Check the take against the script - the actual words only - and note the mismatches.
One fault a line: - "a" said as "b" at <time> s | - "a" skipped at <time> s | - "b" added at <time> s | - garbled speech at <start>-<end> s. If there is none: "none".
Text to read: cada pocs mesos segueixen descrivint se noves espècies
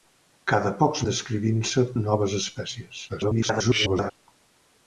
- "mesos segueixen" skipped at 1.0 s
- garbled speech at 3.1-4.1 s